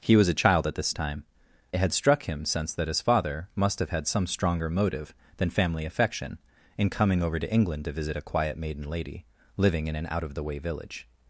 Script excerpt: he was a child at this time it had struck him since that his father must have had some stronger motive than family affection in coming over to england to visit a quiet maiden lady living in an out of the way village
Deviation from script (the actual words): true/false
false